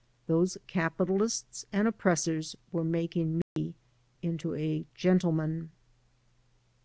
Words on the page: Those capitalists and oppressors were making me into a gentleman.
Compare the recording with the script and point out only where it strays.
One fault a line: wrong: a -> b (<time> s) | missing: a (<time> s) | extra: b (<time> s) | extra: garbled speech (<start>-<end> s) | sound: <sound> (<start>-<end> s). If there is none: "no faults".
sound: dropout (3.4-3.6 s)